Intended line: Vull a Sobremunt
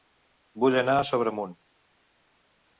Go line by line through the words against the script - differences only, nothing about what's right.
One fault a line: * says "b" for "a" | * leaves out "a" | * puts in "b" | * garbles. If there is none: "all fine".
* puts in "anar"